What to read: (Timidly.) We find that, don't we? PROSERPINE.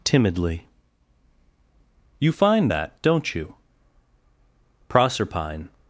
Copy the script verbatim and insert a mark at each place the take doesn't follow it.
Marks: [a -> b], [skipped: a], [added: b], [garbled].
(Timidly.) [We -> You] find that, don't [we? -> you] PROSERPINE.